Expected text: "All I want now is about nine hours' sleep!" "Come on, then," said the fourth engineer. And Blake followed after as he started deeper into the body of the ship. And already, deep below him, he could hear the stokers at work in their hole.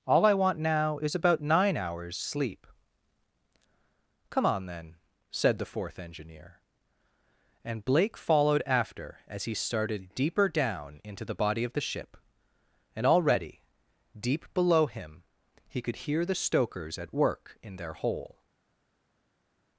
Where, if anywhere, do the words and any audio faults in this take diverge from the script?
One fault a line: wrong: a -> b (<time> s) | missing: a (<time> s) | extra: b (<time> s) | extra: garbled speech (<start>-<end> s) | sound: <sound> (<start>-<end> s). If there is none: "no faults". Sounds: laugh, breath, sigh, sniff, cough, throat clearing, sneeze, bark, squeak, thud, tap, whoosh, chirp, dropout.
extra: down (10.5 s)